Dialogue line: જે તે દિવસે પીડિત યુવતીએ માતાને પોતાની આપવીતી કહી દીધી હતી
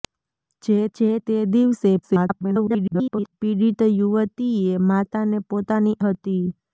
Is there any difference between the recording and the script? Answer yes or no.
yes